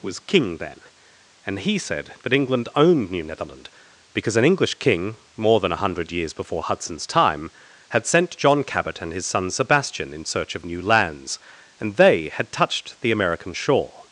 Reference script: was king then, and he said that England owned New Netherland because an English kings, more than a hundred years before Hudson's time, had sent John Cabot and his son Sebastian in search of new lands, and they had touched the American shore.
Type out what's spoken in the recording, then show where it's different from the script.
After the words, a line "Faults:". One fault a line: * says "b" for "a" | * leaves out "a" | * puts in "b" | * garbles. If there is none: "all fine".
was king then, and he said that England owned New Netherland because an English king, more than a hundred years before Hudson's time, had sent John Cabot and his son Sebastian in search of new lands, and they had touched the American shore.
Faults:
* says "king" for "kings"